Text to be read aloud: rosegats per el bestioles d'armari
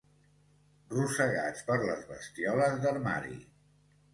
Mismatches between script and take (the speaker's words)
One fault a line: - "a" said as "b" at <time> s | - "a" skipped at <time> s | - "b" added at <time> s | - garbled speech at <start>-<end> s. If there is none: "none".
- "el" said as "les" at 1.9 s